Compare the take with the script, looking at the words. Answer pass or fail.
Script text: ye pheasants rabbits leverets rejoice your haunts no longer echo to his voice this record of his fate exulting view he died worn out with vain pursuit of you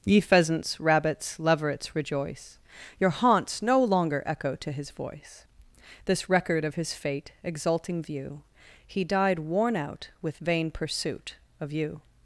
pass